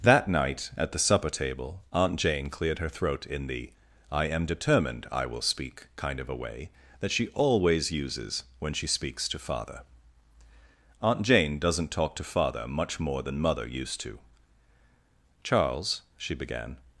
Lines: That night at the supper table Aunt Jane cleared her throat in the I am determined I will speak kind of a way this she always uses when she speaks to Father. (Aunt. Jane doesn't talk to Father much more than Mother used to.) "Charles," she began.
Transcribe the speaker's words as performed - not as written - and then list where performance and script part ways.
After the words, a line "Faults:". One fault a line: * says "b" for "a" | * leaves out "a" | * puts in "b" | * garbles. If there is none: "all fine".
That night at the supper table Aunt Jane cleared her throat in the I am determined I will speak kind of a way that she always uses when she speaks to Father. (Aunt. Jane doesn't talk to Father much more than Mother used to.) "Charles," she began.
Faults:
* says "that" for "this"